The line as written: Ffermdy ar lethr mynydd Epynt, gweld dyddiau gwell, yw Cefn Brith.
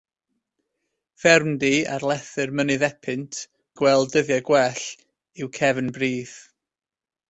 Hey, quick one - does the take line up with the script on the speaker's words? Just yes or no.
yes